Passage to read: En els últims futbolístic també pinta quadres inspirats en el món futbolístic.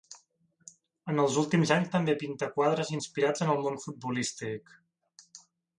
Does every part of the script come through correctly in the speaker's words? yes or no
no